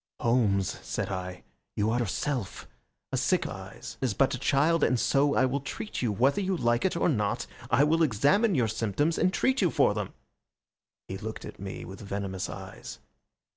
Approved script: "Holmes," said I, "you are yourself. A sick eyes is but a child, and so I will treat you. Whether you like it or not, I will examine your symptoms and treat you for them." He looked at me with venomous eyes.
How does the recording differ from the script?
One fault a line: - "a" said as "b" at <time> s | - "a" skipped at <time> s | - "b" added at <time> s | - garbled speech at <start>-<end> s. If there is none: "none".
none